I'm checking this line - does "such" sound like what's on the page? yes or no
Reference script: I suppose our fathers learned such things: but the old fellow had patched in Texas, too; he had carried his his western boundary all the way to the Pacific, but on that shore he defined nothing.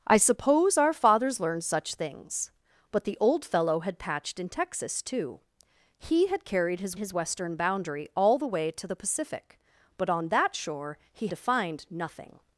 yes